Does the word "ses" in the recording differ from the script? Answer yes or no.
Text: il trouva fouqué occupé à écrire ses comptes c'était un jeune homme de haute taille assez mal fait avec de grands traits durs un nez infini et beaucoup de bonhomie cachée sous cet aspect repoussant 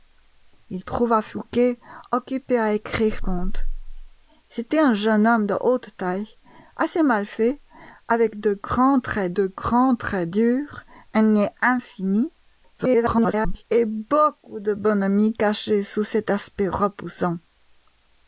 yes